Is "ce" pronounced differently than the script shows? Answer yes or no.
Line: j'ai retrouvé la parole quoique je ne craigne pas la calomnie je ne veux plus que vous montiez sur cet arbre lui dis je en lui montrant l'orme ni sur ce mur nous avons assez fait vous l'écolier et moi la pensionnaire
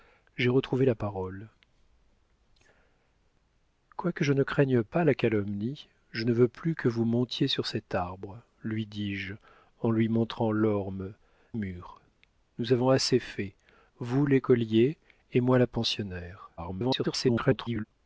yes